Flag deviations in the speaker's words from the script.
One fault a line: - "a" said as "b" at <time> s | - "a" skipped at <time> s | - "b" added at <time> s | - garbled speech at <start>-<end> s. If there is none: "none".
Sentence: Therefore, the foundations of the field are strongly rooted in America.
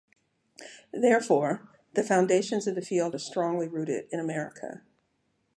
none